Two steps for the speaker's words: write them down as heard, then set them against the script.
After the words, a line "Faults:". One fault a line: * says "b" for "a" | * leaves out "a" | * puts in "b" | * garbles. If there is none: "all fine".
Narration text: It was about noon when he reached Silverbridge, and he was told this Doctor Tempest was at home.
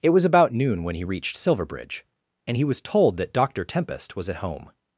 It was about noon when he reached Silverbridge, and he was told that Doctor Tempest was at home.
Faults:
* says "that" for "this"